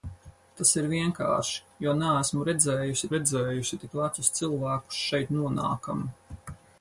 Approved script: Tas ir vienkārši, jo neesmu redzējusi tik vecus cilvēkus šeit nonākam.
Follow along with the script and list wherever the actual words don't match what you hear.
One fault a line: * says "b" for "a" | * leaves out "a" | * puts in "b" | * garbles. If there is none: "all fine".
* puts in "redzējusi"